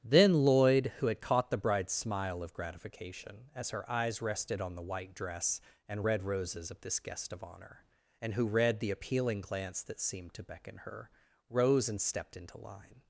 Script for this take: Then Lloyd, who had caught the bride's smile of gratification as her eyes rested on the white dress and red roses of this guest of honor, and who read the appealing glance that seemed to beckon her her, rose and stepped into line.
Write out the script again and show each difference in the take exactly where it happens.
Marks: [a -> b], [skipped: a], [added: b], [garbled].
Then Lloyd, who had caught the bride's smile of gratification as her eyes rested on the white dress and red roses of this guest of honor, and who read the appealing glance that seemed to beckon her [skipped: her,] rose and stepped into line.